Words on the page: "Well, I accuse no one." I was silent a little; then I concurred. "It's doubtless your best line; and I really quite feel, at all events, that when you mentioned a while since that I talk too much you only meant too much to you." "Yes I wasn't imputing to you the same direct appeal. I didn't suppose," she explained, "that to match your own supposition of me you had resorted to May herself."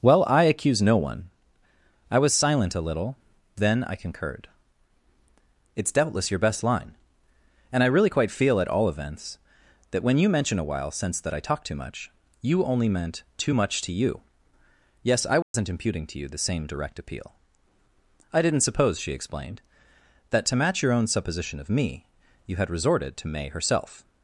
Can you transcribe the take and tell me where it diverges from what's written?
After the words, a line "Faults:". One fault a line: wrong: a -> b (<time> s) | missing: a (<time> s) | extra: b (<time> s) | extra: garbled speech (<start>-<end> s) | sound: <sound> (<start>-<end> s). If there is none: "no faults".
"Well, I accuse no one." I was silent a little; then I concurred. "It's doubtless your best line; and I really quite feel, at all events, that when you mention a while since that I talk too much you only meant too much to you." "Yes I wasn't imputing to you the same direct appeal. I didn't suppose," she explained, "that to match your own supposition of me you had resorted to May herself."
Faults:
wrong: mentioned -> mention (10.3 s)
sound: dropout (15.4-15.5 s)